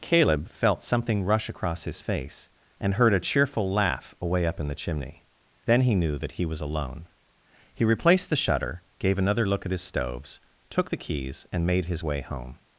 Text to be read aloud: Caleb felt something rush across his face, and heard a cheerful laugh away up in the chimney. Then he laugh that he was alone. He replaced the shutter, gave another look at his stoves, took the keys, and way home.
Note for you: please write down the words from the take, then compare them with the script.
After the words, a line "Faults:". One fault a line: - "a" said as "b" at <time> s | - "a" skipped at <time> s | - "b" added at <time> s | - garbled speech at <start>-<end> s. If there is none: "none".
Caleb felt something rush across his face, and heard a cheerful laugh away up in the chimney. Then he knew that he was alone. He replaced the shutter, gave another look at his stoves, took the keys, and made his way home.
Faults:
- "laugh" said as "knew" at 6.0 s
- "made his" added at 11.7 s